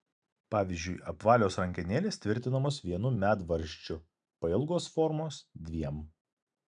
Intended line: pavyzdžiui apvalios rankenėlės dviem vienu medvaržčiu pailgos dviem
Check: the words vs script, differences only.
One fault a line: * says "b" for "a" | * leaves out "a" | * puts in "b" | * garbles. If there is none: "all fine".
* says "tvirtinamos" for "dviem"
* puts in "formos"